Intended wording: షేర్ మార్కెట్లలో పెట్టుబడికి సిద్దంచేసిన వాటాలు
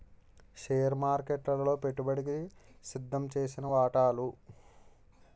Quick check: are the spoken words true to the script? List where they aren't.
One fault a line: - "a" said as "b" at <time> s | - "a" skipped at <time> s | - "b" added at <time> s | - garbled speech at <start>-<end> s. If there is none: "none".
none